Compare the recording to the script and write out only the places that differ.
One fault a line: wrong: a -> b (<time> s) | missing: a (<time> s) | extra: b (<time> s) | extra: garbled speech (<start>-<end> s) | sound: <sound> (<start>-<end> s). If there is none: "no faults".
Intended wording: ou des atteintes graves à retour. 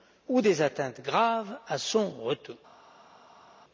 extra: son (1.8 s)